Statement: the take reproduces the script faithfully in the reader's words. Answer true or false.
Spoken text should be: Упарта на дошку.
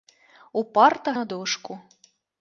true